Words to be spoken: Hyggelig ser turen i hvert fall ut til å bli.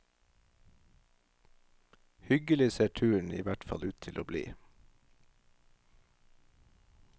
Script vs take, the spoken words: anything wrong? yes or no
no